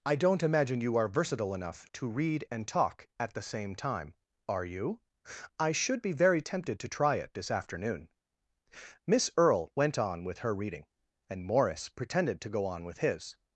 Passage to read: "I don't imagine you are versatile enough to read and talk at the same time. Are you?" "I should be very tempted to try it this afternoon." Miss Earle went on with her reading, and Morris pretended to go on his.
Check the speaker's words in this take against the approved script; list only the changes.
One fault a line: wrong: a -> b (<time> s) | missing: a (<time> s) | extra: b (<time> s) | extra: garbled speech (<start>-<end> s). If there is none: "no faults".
extra: with (12.8 s)